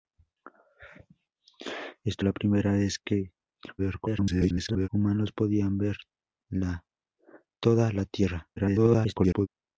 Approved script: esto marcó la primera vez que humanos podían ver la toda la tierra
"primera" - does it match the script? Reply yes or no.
yes